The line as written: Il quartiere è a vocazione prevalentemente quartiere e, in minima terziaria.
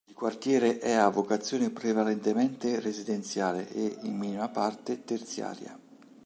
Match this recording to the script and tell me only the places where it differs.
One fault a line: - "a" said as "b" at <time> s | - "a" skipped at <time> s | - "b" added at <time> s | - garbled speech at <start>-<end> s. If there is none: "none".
- "quartiere" said as "residenziale" at 2.8 s
- "parte" added at 4.5 s